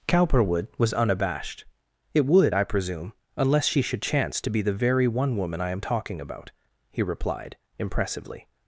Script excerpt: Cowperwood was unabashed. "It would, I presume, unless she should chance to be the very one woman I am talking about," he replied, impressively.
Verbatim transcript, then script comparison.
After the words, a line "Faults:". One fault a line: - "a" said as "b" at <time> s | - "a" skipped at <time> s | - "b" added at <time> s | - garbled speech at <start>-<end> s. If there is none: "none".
Cowperwood was unabashed. "It would, I presume, unless she should chance to be the very one woman I am talking about," he replied, impressively.
Faults:
none